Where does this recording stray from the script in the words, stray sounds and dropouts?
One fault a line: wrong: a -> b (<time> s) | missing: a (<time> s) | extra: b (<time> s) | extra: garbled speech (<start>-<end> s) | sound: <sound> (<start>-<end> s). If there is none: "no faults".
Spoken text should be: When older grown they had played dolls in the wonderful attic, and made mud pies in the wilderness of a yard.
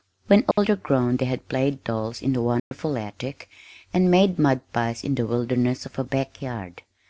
sound: dropout (0.5-0.6 s)
sound: dropout (2.6-2.7 s)
extra: back (6.0 s)